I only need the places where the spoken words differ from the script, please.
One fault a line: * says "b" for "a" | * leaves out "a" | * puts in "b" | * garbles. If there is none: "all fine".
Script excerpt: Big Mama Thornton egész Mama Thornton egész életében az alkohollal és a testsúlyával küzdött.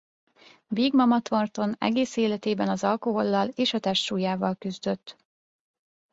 * leaves out "Mama Thornton egész"